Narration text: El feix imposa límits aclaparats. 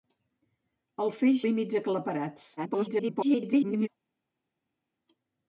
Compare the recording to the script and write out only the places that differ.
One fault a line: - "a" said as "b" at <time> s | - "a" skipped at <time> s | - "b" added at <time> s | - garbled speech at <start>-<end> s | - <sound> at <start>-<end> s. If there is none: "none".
- "imposa" skipped at 1.4 s
- garbled speech at 2.6-3.9 s